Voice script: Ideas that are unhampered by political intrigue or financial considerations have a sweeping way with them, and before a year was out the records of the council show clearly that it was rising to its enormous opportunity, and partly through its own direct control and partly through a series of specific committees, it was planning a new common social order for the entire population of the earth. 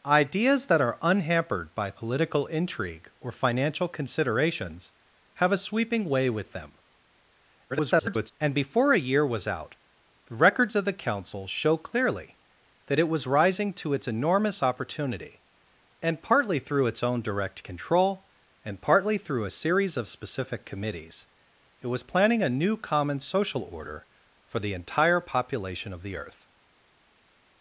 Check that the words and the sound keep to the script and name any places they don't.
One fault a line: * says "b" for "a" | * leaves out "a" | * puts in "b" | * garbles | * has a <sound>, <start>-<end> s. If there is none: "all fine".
* garbles